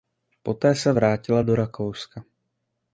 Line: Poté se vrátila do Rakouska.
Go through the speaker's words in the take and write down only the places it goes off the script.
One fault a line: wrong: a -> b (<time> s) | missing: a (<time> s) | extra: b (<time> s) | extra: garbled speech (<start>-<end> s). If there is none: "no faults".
no faults